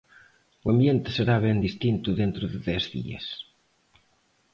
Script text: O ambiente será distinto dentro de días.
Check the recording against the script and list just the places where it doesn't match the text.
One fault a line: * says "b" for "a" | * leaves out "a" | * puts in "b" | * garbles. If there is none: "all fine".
* puts in "ben"
* puts in "dez"